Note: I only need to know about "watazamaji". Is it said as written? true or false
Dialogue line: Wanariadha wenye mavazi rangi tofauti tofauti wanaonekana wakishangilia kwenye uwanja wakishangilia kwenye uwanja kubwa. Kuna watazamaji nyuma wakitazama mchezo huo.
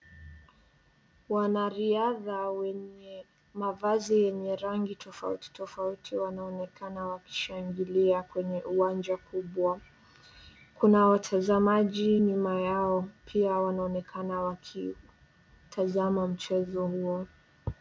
true